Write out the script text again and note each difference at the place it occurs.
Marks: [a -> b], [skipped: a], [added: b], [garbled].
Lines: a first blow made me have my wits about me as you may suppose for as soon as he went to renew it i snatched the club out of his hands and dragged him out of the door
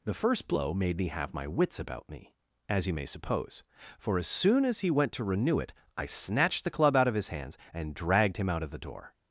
[a -> the] first blow made me have my wits about me as you may suppose for as soon as he went to renew it i snatched the club out of his hands and dragged him out of the door